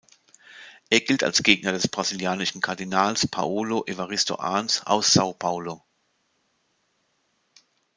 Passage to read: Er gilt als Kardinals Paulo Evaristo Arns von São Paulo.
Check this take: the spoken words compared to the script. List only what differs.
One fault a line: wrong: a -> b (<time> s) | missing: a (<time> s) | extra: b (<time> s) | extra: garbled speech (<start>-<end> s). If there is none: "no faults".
extra: Gegner des brasilianischen (1.4 s)
wrong: von -> aus (4.9 s)